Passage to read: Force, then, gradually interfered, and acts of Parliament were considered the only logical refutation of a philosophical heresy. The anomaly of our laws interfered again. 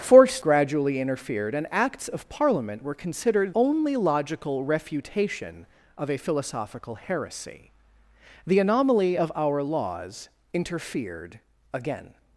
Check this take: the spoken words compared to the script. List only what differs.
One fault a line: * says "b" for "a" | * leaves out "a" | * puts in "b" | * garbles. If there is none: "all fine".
* leaves out "then"
* leaves out "the"